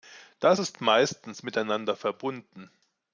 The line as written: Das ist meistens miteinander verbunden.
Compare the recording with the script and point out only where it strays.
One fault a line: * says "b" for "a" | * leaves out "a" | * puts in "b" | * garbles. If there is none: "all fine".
all fine